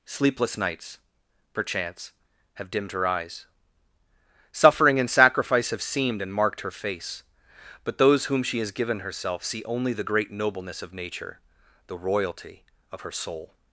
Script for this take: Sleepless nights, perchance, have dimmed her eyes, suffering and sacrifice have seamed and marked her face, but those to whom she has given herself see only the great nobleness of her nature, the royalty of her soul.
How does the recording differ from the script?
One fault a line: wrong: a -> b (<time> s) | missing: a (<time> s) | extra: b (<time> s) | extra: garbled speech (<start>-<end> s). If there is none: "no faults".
missing: to (8.3 s)
missing: her (10.9 s)